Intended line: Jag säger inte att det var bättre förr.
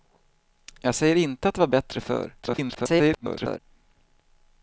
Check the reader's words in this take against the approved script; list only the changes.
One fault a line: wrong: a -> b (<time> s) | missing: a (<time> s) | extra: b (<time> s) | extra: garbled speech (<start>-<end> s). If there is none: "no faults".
extra: garbled speech (2.4-3.6 s)